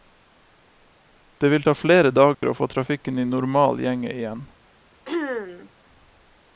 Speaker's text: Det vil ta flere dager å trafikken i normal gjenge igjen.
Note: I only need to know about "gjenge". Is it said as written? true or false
true